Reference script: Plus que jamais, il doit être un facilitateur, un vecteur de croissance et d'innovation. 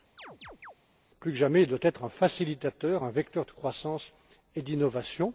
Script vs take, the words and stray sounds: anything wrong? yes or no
yes